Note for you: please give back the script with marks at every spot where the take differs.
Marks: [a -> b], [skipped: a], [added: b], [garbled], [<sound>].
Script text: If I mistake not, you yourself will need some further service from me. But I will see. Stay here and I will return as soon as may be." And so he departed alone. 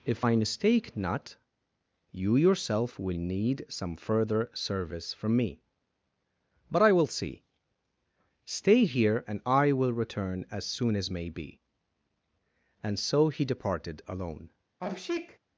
If I mistake not, you yourself will need some further service from me. But I will see. Stay here and I will return as soon as may be." And so he departed alone. [sneeze]